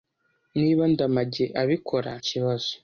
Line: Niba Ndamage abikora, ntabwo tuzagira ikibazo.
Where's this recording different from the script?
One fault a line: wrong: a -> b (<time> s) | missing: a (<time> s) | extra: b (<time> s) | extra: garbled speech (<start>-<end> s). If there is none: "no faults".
missing: ntabwo tuzagira (2.1 s)